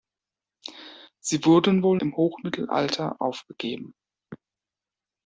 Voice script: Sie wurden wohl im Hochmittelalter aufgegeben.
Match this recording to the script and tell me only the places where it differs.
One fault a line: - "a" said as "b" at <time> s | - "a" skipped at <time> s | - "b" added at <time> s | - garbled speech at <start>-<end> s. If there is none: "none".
none